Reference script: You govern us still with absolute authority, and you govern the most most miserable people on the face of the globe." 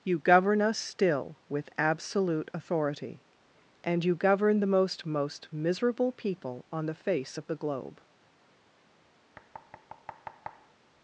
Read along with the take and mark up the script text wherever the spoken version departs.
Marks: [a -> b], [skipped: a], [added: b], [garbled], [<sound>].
You govern us still with absolute authority, and you govern the most most miserable people on the face of the globe." [thud]